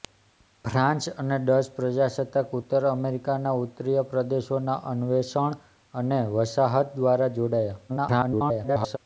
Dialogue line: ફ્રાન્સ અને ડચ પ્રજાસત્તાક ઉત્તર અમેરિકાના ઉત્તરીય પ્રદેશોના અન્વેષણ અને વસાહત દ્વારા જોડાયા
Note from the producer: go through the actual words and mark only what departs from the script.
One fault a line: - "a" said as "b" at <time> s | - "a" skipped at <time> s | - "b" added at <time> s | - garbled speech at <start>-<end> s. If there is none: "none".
- garbled speech at 7.9-9.0 s